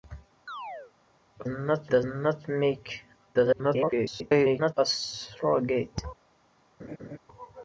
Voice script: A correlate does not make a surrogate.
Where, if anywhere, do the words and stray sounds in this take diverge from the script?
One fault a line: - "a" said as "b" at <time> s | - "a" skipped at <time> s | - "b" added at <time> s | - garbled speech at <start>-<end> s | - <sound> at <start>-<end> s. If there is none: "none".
- chirp at 0.5-0.9 s
- "correlate" said as "not" at 1.5 s
- garbled speech at 3.3-4.7 s
- laugh at 6.8-7.2 s